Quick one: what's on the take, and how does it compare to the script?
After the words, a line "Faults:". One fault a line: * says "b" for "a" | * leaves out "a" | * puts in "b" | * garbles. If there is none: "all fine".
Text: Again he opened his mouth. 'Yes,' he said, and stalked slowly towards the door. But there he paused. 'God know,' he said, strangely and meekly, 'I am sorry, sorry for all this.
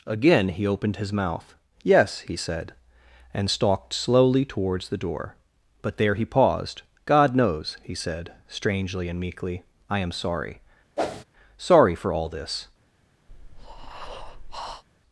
Again he opened his mouth. 'Yes,' he said, and stalked slowly towards the door. But there he paused. 'God knows,' he said, strangely and meekly, 'I am sorry, sorry for all this.
Faults:
* says "knows" for "know"